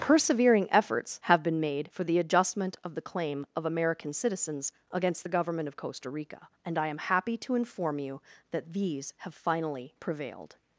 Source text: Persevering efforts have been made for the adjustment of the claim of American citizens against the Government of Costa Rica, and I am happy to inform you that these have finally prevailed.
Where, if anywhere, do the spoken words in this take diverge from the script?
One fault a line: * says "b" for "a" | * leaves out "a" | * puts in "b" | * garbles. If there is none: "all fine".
all fine